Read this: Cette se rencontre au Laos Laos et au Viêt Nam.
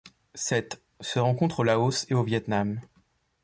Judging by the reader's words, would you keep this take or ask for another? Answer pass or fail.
fail